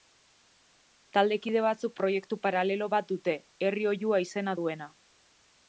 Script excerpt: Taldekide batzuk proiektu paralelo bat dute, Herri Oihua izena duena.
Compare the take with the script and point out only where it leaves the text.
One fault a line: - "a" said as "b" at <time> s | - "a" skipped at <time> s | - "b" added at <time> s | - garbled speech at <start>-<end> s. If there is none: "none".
none